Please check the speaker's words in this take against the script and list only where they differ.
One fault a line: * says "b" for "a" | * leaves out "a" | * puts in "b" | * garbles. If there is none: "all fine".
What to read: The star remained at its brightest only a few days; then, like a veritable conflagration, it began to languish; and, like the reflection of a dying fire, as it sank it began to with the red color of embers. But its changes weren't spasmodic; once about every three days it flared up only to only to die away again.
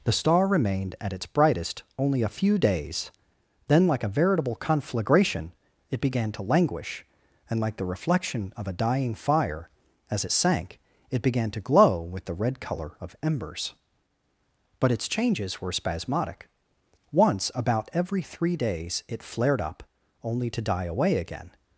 * puts in "glow"
* says "were" for "weren't"
* leaves out "only to"